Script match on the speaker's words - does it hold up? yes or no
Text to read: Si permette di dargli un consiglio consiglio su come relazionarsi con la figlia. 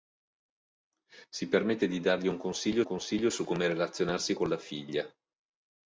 yes